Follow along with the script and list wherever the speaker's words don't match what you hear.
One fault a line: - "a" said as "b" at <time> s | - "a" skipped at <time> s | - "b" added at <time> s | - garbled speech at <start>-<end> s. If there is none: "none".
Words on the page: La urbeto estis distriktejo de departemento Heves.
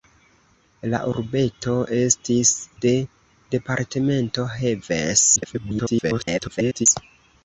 - "distriktejo" skipped at 2.5 s
- garbled speech at 5.4-6.9 s